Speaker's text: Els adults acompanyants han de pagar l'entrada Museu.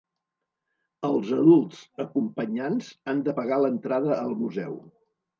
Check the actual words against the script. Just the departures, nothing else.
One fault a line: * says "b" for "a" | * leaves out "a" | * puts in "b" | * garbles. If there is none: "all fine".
* puts in "al"